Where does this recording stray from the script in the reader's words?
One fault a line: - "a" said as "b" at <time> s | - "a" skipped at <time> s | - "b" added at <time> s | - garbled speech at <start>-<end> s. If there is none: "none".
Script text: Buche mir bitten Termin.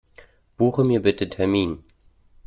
none